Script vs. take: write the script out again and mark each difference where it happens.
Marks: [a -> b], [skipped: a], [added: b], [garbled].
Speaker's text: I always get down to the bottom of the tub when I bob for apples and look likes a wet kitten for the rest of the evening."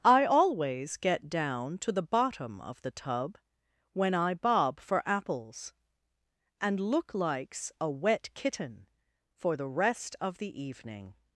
I always get down to the bottom of the tub when I bob for apples and look likes a wet kitten for the rest of the evening."